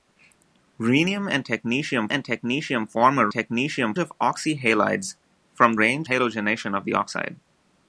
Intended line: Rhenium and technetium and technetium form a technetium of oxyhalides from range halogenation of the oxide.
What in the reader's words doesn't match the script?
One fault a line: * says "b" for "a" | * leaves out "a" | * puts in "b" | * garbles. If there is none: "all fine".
all fine